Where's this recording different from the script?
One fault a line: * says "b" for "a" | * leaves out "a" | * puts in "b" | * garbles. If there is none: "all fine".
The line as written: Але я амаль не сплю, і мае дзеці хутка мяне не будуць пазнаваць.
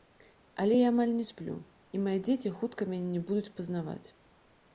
all fine